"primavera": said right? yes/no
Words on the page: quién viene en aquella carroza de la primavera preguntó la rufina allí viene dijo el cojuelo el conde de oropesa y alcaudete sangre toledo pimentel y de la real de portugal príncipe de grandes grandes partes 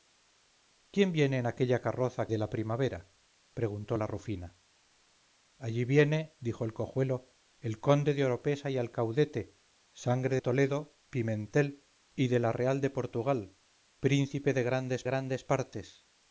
yes